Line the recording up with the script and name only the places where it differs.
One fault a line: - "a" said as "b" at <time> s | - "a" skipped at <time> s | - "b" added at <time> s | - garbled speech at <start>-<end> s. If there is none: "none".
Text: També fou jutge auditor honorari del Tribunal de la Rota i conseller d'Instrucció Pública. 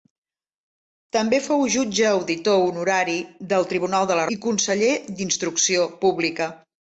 - "Rota" skipped at 4.2 s